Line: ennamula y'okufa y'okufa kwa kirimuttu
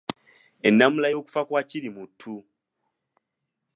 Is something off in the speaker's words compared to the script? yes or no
yes